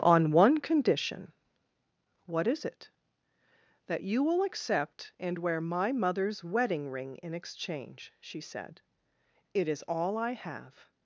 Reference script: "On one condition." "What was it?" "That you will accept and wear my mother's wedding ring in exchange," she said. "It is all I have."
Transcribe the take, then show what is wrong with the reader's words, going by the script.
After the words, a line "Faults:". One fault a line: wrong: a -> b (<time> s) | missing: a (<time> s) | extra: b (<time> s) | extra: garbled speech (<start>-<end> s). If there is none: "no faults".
"On one condition." "What is it?" "That you will accept and wear my mother's wedding ring in exchange," she said. "It is all I have."
Faults:
wrong: was -> is (2.5 s)